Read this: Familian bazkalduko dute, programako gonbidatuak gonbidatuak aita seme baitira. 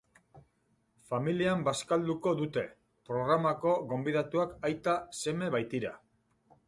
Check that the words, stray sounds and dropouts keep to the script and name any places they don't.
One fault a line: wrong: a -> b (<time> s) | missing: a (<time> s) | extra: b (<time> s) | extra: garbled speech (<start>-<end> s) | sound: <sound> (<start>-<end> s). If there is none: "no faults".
missing: gonbidatuak (4.6 s)